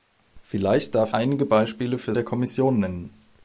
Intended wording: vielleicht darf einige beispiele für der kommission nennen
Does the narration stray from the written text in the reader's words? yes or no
no